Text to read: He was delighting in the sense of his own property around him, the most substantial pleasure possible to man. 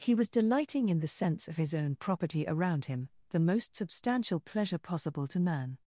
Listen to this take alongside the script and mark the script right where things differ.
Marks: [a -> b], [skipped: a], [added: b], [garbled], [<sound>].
He was delighting in the sense of his own property around him, the most substantial pleasure possible to man.